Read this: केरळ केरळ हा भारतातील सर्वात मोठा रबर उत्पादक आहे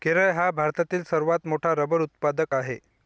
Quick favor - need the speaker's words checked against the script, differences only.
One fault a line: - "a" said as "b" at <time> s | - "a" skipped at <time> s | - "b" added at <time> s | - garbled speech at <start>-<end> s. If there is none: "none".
- "केरळ" skipped at 0.3 s